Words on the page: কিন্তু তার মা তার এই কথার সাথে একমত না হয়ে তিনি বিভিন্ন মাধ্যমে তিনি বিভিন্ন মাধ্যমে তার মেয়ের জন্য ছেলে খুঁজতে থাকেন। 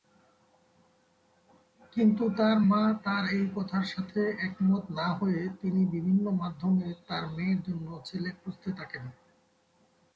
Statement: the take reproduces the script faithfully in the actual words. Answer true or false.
false